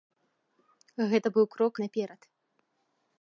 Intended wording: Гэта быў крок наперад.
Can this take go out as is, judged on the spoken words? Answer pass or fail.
pass